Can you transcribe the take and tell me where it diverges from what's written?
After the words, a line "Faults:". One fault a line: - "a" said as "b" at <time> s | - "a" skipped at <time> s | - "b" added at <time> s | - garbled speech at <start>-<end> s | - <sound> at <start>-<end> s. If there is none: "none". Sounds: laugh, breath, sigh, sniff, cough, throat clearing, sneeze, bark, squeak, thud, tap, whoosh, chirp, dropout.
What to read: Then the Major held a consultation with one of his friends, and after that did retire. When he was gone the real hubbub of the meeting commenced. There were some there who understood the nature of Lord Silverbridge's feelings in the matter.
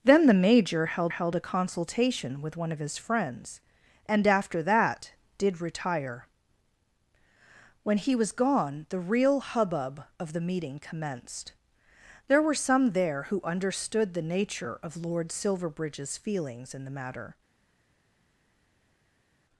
Then the Major held held a consultation with one of his friends, and after that did retire. When he was gone the real hubbub of the meeting commenced. There were some there who understood the nature of Lord Silverbridge's feelings in the matter.
Faults:
- "held" added at 1.1 s